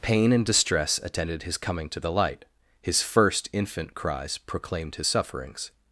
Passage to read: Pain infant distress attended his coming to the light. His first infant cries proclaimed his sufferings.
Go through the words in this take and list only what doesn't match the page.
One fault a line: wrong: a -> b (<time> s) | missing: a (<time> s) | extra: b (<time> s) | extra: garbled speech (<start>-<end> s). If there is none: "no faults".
wrong: infant -> and (0.3 s)